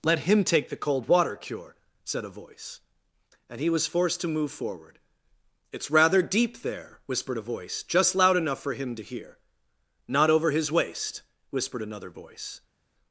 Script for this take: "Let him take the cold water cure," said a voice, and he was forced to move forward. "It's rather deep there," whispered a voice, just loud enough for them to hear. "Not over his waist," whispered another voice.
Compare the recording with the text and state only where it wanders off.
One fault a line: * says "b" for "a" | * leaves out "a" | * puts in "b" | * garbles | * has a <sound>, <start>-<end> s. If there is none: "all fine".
* says "him" for "them"